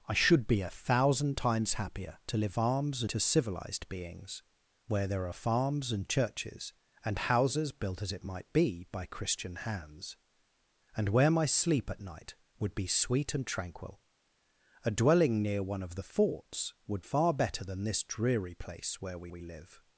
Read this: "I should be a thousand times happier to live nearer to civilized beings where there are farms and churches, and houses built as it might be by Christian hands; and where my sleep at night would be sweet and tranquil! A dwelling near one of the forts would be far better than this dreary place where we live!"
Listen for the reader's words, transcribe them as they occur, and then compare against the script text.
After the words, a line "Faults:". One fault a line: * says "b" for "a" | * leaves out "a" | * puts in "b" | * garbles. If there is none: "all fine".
"I should be a thousand times happier to live farms to civilized beings where there are farms and churches, and houses built as it might be by Christian hands; and where my sleep at night would be sweet and tranquil! A dwelling near one of the forts would far better than this dreary place where we we live!"
Faults:
* says "farms" for "nearer"
* leaves out "be"
* puts in "we"